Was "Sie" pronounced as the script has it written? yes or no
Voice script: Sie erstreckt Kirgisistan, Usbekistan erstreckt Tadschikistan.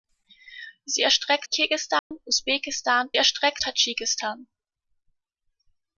yes